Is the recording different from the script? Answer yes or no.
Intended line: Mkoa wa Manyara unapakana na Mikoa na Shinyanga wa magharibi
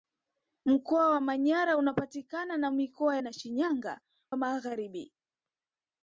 no